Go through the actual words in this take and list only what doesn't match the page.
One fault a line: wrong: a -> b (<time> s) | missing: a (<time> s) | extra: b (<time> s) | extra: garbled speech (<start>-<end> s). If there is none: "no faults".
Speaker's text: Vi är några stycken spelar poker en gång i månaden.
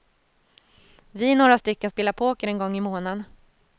no faults